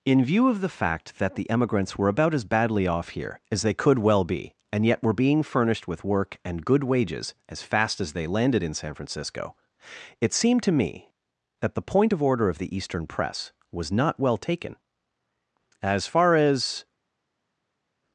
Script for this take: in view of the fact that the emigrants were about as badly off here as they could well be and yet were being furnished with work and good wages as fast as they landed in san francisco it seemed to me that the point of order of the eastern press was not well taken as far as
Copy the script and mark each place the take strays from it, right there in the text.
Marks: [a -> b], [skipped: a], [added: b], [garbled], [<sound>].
in view of the fact that the emigrants were about as badly off here as they could well be and yet were being furnished with work and good wages as fast as they landed in san francisco it seemed to me that the point of order of the eastern press was not well taken as far as